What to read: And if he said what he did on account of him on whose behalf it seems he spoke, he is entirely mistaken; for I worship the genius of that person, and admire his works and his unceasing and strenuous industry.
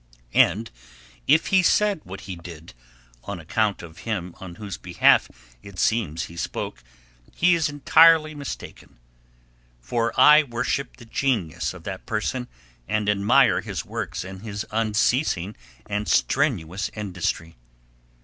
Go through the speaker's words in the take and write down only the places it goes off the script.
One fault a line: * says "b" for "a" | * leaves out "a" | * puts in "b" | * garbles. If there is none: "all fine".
all fine